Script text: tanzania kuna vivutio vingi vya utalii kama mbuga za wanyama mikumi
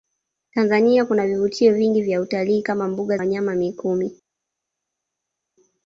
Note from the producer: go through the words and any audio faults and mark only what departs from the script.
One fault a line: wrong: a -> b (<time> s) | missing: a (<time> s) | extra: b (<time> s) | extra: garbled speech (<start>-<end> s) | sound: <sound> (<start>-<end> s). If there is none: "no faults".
missing: za (3.2 s)